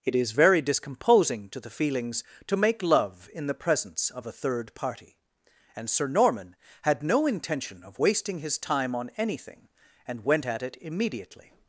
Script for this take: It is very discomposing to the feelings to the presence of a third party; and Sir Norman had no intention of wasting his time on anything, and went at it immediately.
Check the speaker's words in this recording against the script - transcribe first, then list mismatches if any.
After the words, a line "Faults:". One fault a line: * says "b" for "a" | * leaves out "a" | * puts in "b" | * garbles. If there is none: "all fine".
It is very discomposing to the feelings to make love in the presence of a third party; and Sir Norman had no intention of wasting his time on anything, and went at it immediately.
Faults:
* puts in "make love in"